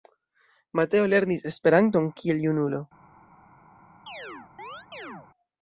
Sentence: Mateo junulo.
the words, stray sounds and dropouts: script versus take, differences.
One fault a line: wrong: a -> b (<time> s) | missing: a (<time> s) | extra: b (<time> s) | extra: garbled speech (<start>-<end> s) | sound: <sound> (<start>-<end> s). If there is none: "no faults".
extra: lernis Esperanton kiel (1.1 s)
sound: chirp (4.1-5.3 s)